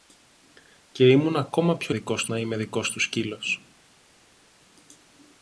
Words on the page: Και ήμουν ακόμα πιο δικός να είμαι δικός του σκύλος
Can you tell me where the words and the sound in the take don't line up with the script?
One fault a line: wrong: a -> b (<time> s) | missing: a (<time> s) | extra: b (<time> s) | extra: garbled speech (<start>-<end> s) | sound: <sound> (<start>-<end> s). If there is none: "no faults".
no faults